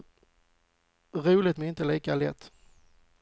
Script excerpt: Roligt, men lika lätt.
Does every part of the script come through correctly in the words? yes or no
no